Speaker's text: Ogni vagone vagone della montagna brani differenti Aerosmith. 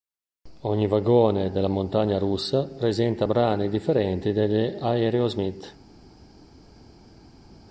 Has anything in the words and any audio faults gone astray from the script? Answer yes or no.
yes